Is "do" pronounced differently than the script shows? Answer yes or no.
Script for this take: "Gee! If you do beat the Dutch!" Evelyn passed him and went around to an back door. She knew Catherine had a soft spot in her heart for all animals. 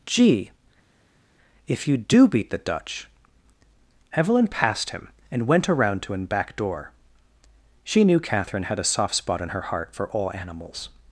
no